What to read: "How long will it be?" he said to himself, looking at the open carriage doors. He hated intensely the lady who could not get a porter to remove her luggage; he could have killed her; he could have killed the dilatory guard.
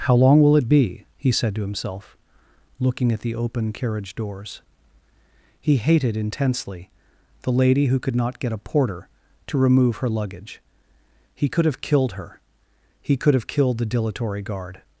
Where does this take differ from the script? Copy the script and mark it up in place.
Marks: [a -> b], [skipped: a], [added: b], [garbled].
"How long will it be?" he said to himself, looking at the open carriage doors. He hated intensely the lady who could not get a porter to remove her luggage; he could have killed her; he could have killed the dilatory guard.